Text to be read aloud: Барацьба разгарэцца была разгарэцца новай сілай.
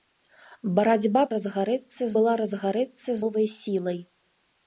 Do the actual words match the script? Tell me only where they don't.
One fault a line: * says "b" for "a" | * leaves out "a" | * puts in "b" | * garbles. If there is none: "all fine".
all fine